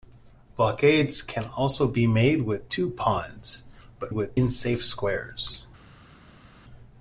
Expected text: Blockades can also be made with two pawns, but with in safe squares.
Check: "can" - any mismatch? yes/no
no